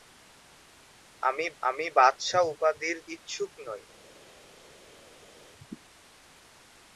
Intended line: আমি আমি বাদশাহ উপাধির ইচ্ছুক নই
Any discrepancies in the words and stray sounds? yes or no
no